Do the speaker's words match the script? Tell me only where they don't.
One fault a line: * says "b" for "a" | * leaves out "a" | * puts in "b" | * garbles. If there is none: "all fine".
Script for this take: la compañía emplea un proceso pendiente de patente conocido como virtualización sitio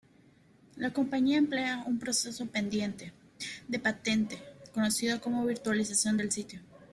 * puts in "del"